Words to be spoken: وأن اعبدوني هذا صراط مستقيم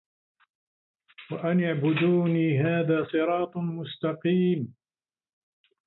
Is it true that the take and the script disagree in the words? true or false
false